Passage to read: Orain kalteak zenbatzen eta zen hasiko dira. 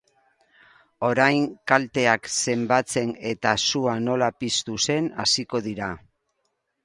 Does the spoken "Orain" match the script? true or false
true